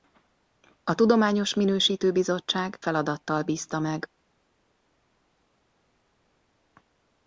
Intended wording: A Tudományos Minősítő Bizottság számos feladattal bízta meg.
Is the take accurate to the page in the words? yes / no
no